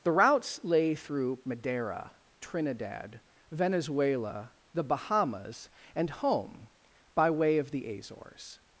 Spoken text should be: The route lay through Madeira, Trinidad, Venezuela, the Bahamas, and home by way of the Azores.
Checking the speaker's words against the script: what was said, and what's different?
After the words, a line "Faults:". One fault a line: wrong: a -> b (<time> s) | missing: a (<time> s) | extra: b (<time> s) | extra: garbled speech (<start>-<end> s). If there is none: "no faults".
The routes lay through Madeira, Trinidad, Venezuela, the Bahamas, and home by way of the Azores.
Faults:
wrong: route -> routes (0.1 s)